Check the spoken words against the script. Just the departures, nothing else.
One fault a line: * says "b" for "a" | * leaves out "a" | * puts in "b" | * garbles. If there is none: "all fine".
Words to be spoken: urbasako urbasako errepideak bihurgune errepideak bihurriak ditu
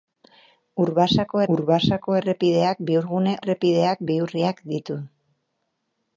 all fine